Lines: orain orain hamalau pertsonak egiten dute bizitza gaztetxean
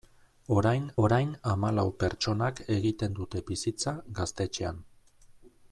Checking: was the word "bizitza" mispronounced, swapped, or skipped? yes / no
no